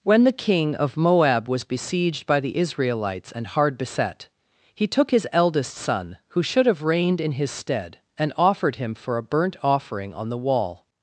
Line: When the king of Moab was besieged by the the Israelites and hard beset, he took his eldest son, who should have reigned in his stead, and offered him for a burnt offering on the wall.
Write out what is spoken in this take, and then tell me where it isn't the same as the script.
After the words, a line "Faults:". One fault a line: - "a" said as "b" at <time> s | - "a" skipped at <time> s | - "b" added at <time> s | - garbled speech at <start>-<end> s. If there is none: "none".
When the king of Moab was besieged by the Israelites and hard beset, he took his eldest son, who should have reigned in his stead, and offered him for a burnt offering on the wall.
Faults:
- "the" skipped at 2.6 s